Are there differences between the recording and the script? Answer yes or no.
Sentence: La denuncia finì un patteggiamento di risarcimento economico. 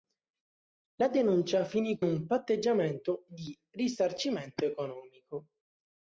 no